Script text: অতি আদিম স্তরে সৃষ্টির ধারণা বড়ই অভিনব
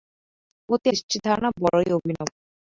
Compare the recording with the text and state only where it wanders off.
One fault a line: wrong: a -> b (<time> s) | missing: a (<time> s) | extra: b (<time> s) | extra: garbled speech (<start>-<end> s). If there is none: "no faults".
missing: আদিম স্তরে (0.9 s)